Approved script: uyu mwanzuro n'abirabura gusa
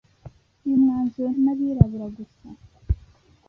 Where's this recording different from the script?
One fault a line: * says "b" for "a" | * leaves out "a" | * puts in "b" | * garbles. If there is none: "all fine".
all fine